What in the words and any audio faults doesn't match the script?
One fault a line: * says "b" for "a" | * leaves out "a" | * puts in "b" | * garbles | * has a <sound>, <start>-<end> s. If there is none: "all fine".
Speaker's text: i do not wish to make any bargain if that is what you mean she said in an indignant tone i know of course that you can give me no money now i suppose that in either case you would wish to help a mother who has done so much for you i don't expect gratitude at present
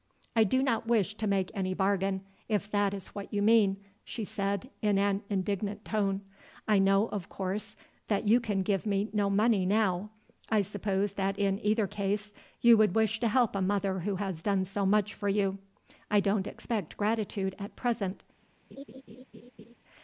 * has a laugh, 18.7-19.8 s